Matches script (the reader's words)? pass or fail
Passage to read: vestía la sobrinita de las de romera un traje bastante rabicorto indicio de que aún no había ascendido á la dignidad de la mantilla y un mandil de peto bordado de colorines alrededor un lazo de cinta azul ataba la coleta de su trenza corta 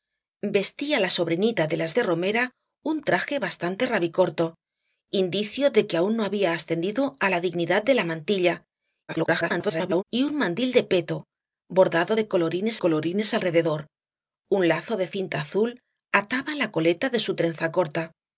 fail